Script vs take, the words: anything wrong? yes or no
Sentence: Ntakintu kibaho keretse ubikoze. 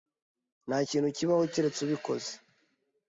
no